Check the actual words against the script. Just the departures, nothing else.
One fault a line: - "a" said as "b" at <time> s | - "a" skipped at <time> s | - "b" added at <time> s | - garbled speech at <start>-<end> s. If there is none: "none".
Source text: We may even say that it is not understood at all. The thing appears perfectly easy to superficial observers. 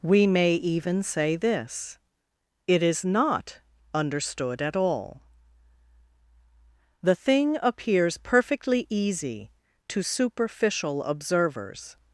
- "that" said as "this" at 1.4 s